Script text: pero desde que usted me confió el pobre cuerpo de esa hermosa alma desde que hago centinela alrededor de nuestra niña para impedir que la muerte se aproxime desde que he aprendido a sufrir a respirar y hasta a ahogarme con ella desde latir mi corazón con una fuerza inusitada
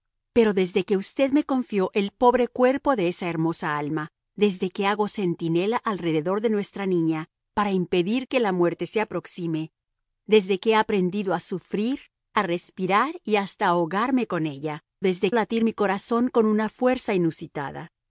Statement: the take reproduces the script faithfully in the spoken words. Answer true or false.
true